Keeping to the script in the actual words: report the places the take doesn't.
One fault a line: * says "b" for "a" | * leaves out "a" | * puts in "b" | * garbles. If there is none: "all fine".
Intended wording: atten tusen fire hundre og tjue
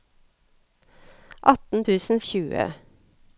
* leaves out "fire hundre"